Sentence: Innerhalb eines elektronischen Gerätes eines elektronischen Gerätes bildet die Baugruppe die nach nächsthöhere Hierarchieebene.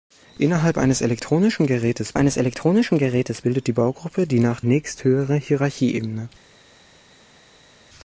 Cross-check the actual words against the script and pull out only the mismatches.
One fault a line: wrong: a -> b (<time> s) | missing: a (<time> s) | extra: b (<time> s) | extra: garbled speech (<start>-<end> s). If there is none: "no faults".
no faults